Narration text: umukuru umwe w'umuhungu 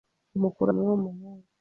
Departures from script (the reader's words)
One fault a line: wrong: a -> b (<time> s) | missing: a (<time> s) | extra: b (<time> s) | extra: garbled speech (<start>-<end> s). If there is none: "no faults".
no faults